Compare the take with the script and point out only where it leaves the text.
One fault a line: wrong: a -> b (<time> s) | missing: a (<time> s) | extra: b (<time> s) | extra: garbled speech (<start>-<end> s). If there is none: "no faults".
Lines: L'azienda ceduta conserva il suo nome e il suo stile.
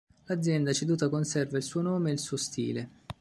no faults